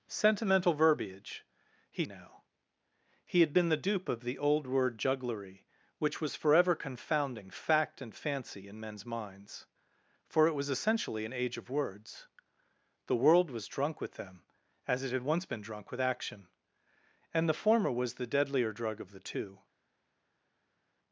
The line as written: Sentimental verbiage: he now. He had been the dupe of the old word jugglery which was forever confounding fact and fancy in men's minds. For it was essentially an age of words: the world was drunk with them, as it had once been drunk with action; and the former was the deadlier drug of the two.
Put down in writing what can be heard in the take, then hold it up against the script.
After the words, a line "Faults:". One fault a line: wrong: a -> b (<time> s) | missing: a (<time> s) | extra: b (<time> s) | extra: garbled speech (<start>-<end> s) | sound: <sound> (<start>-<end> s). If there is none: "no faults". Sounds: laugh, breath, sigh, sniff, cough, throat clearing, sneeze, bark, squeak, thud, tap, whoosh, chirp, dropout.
Sentimental verbiage: he now. He had been the dupe of the old word jugglery which was forever confounding fact and fancy in men's minds. For it was essentially an age of words: the world was drunk with them, as it had once been drunk with action; and the former was the deadlier drug of the two.
Faults:
no faults